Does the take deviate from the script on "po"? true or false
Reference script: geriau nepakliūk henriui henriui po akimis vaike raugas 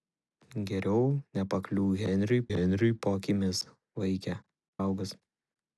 false